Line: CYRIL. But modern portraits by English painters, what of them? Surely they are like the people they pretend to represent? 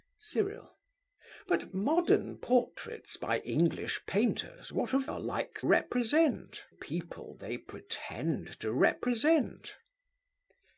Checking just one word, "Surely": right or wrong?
wrong